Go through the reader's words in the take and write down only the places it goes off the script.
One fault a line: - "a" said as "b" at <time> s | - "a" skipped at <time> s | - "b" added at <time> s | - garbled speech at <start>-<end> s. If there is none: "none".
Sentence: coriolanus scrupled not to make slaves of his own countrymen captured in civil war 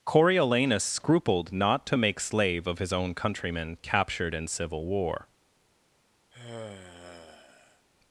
- "slaves" said as "slave" at 2.2 s